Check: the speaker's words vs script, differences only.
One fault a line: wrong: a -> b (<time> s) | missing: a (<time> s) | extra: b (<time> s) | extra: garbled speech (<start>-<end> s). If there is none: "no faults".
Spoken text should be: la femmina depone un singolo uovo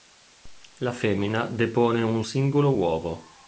no faults